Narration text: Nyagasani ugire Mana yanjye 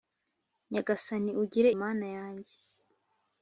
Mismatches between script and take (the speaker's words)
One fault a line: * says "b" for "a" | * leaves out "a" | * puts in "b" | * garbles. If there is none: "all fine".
all fine